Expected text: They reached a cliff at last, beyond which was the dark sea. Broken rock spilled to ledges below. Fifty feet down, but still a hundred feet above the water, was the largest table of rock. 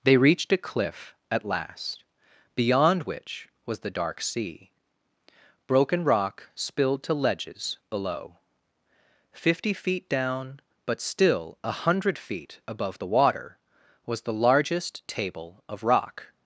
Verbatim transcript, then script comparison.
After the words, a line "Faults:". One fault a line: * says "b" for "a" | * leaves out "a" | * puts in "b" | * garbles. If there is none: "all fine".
They reached a cliff at last, beyond which was the dark sea. Broken rock spilled to ledges below. Fifty feet down, but still a hundred feet above the water, was the largest table of rock.
Faults:
all fine